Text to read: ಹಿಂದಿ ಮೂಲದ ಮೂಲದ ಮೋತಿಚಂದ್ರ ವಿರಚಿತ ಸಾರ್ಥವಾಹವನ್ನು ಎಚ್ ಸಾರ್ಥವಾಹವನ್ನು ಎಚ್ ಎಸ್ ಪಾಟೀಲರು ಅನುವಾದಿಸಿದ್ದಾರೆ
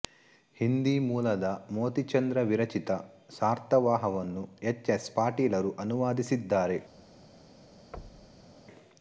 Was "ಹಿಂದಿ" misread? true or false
false